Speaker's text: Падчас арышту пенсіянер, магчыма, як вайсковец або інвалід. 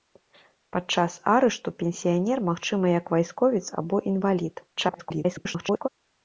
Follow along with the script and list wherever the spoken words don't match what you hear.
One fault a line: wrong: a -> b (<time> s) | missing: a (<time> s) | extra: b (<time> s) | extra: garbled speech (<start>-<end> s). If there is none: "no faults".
extra: garbled speech (4.8-5.9 s)